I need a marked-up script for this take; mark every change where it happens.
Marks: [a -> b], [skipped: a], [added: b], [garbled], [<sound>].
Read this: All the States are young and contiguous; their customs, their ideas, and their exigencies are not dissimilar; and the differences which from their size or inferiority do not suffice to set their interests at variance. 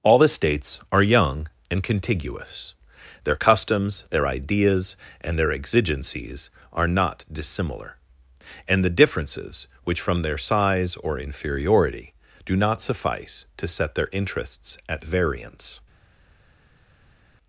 All the States are young and contiguous; their customs, their ideas, and their exigencies are not dissimilar; and the differences which from their size or inferiority do not suffice to set their interests at variance.